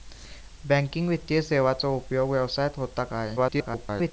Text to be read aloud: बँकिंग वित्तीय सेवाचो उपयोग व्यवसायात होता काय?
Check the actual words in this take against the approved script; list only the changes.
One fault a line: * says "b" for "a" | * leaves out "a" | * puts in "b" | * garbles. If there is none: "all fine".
* garbles